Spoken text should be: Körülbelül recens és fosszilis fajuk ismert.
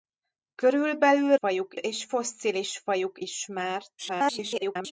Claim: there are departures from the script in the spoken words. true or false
true